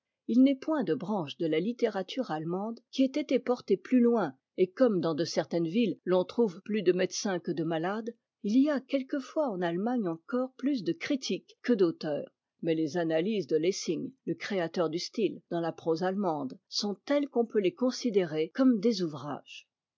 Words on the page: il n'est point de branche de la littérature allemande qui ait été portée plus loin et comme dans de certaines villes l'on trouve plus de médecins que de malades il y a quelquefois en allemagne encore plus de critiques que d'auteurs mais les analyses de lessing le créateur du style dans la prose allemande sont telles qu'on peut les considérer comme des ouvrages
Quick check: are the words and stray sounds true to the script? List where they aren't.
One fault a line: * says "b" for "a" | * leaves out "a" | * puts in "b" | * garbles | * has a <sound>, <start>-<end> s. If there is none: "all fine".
all fine